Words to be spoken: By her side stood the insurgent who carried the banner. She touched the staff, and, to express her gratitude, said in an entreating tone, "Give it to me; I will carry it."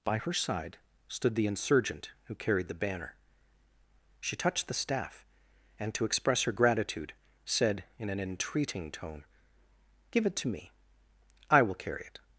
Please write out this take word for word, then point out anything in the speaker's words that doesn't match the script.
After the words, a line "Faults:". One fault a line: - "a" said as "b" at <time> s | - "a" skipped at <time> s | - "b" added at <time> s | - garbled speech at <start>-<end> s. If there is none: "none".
By her side stood the insurgent who carried the banner. She touched the staff, and, to express her gratitude, said in an entreating tone, "Give it to me; I will carry it."
Faults:
none